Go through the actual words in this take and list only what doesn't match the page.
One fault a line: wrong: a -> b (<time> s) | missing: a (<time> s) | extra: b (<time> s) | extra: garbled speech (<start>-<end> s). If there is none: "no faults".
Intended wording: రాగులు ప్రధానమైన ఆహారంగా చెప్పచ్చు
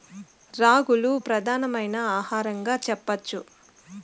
no faults